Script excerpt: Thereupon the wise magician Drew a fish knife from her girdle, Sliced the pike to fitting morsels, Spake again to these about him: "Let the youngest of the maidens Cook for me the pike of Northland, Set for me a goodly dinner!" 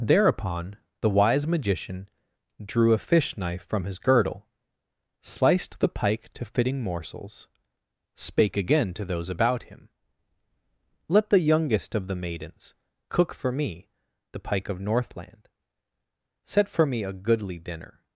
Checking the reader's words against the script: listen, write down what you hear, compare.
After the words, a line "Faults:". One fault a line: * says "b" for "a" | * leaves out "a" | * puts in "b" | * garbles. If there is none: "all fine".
Thereupon the wise magician Drew a fish knife from his girdle, Sliced the pike to fitting morsels, Spake again to those about him: "Let the youngest of the maidens Cook for me the pike of Northland, Set for me a goodly dinner!"
Faults:
* says "his" for "her"
* says "those" for "these"